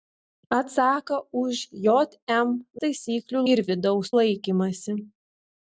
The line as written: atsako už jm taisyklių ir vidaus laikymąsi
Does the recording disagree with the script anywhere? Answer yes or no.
no